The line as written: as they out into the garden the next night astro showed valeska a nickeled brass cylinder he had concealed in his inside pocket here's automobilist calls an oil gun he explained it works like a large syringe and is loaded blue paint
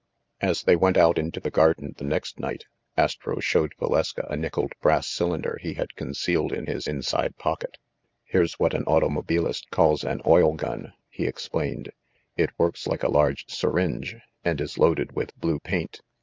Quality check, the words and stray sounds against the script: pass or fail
fail